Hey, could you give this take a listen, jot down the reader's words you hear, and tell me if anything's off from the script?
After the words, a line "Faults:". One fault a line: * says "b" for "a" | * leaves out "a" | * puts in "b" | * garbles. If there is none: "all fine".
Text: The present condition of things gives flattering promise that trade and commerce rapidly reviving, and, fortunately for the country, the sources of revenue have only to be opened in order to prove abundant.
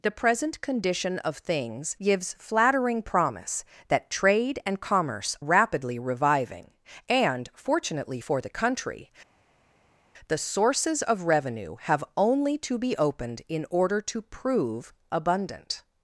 The present condition of things gives flattering promise that trade and commerce rapidly reviving, and, fortunately for the country, the sources of revenue have only to be opened in order to prove abundant.
Faults:
all fine